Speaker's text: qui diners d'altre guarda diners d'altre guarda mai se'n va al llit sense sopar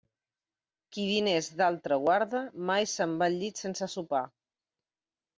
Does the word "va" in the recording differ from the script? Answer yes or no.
no